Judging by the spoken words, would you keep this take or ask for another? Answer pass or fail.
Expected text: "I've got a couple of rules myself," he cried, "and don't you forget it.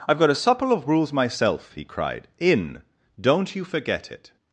fail